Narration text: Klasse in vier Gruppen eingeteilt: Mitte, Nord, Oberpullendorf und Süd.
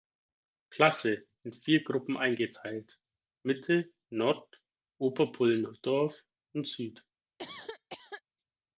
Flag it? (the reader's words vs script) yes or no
no